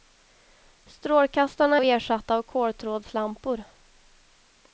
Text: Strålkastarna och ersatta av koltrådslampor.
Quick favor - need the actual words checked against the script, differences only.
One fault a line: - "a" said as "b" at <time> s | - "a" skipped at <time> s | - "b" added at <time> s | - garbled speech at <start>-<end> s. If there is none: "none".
none